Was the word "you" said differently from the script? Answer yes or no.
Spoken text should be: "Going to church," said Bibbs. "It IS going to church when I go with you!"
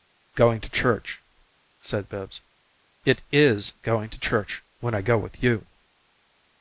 no